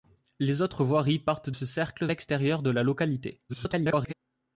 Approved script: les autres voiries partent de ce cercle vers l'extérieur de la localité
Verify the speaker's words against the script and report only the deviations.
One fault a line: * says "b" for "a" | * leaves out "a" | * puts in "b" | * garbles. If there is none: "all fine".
* leaves out "de"
* leaves out "vers"
* garbles